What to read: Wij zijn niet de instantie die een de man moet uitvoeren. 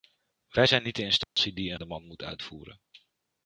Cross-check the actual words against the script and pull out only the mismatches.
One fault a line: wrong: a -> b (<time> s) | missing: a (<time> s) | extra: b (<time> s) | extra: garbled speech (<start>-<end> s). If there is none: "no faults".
no faults